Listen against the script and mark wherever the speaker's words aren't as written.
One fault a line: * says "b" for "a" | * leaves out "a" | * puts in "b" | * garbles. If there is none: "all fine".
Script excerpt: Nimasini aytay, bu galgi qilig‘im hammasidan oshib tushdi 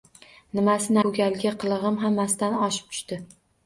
* leaves out "aytay"